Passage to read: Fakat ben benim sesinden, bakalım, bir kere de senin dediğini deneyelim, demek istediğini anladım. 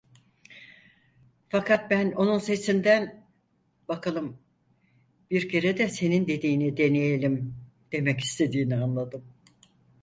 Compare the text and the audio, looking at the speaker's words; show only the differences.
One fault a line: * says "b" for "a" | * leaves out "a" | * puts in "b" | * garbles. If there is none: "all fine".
* says "onun" for "benim"